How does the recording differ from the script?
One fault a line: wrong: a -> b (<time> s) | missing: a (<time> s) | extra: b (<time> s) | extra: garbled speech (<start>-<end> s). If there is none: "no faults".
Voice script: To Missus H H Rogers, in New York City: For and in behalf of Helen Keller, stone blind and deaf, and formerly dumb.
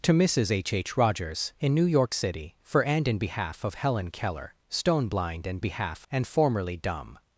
wrong: deaf -> behalf (5.6 s)